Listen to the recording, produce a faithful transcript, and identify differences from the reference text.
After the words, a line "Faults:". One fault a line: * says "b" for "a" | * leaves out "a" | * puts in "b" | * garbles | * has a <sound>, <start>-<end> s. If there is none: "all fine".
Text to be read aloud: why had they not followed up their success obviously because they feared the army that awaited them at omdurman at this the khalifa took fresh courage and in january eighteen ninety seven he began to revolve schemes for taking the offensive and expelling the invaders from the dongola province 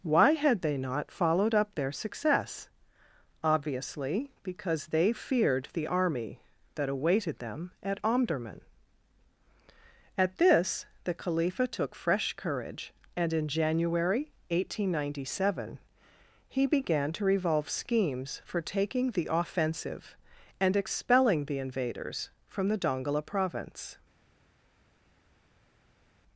why had they not followed up their success obviously because they feared the army that awaited them at omdurman at this the khalifa took fresh courage and in january eighteen ninety seven he began to revolve schemes for taking the offensive and expelling the invaders from the dongola province
Faults:
all fine